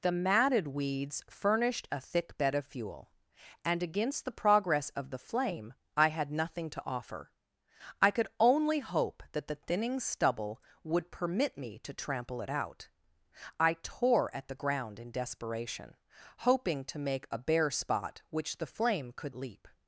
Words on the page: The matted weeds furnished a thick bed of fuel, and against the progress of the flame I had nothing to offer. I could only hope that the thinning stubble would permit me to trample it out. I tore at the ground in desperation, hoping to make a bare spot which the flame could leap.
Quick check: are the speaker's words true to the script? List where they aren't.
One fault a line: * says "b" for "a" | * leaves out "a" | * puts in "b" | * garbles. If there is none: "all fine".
all fine